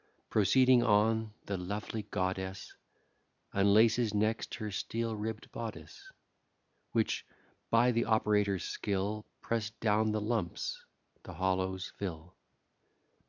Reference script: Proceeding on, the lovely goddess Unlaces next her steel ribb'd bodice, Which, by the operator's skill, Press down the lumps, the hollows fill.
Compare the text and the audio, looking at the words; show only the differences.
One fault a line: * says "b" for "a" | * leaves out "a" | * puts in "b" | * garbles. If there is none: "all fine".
all fine